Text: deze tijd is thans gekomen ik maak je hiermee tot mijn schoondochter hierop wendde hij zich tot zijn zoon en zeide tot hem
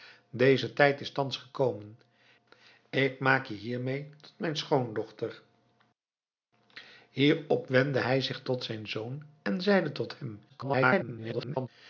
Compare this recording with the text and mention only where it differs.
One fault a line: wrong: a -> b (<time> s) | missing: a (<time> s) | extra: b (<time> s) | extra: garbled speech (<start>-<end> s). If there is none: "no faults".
extra: garbled speech (10.5-11.7 s)